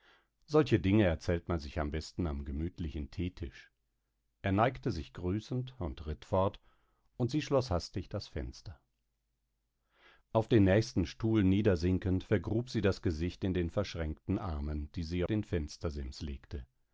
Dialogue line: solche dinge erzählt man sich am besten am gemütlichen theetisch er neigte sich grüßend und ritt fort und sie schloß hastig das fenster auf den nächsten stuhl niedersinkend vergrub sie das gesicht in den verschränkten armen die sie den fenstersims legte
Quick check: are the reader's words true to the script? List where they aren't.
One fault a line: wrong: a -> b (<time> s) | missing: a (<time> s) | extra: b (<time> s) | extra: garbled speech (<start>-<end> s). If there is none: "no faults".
no faults